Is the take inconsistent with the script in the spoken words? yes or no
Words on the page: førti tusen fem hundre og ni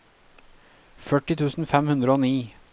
no